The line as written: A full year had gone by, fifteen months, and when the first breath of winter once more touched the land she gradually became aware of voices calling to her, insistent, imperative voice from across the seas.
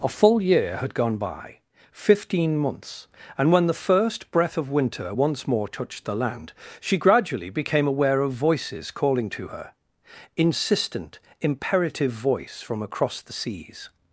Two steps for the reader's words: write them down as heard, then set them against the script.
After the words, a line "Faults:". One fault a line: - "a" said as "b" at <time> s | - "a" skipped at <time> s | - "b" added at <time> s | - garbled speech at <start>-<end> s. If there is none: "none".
A full year had gone by, fifteen months, and when the first breath of winter once more touched the land she gradually became aware of voices calling to her, insistent, imperative voice from across the seas.
Faults:
none